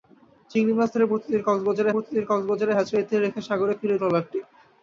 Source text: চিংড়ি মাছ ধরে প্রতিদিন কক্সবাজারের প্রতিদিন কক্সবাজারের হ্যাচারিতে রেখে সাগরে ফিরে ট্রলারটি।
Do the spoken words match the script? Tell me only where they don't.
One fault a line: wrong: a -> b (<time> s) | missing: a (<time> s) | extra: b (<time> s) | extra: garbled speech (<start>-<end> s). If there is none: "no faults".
no faults